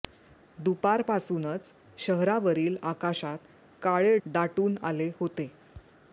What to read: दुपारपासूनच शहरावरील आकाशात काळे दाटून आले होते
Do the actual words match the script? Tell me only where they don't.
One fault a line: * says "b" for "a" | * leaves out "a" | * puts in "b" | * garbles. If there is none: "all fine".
all fine